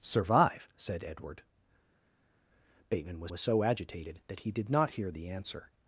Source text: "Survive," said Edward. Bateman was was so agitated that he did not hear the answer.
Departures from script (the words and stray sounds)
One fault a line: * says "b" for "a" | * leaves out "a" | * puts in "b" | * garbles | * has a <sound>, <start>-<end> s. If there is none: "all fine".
all fine